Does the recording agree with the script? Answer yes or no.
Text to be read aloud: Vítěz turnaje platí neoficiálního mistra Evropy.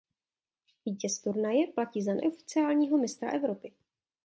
no